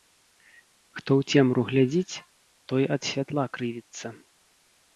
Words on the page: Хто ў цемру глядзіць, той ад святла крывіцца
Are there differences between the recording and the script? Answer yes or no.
no